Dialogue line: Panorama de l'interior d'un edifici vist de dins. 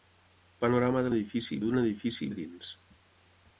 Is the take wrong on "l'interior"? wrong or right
wrong